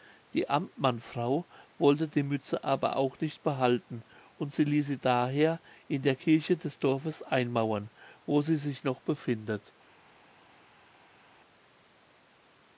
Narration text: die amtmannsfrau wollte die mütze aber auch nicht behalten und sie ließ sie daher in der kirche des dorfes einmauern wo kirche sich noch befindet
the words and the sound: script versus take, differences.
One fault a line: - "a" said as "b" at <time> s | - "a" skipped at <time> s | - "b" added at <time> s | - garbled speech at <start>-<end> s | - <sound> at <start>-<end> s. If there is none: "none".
- "kirche" said as "sie" at 8.4 s